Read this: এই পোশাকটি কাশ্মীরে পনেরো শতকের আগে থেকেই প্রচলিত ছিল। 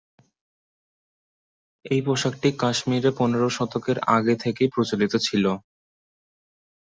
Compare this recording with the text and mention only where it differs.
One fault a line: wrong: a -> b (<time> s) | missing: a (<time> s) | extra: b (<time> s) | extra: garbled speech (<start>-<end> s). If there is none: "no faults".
no faults